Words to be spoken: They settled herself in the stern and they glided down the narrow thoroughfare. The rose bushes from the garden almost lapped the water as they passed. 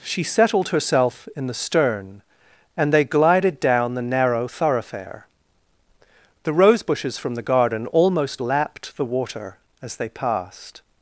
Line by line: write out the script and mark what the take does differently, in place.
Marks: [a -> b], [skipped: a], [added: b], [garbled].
[They -> She] settled herself in the stern and they glided down the narrow thoroughfare. The rose bushes from the garden almost lapped the water as they passed.